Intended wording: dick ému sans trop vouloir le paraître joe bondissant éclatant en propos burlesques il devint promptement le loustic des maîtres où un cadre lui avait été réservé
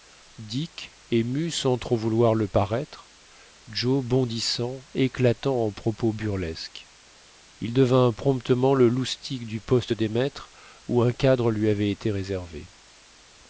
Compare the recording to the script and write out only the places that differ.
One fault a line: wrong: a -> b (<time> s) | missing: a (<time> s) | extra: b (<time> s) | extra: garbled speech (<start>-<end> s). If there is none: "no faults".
extra: du poste (9.4 s)